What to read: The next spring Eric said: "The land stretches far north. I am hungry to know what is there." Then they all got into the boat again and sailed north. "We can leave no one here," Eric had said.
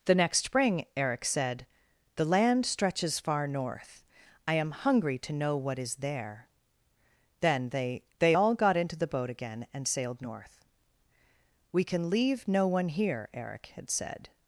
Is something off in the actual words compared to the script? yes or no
yes